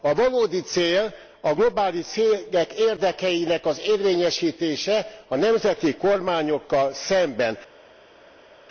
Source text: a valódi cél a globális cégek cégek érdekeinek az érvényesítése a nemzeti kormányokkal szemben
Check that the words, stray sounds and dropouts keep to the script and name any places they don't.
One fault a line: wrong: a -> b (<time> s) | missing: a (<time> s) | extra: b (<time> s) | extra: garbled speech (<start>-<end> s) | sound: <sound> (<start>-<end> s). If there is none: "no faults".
missing: cégek (2.7 s)